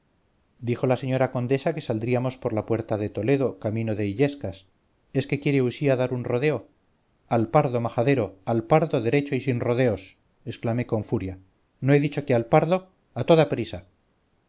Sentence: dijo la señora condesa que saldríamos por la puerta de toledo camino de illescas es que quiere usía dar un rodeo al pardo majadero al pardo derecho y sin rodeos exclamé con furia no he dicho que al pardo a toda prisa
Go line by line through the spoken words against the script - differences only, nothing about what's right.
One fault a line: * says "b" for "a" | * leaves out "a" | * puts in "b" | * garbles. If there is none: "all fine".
all fine